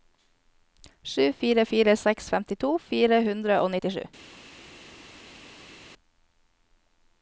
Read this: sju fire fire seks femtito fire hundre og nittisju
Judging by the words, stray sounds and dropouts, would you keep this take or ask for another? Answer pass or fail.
pass